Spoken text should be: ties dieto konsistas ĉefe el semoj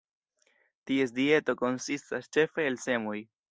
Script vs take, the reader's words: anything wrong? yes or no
no